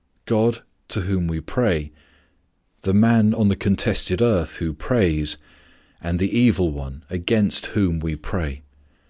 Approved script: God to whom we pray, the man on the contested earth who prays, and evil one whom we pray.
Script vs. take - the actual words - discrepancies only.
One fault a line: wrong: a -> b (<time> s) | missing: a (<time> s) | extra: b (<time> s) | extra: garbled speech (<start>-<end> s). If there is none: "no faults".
extra: the (6.2 s)
extra: against (7.1 s)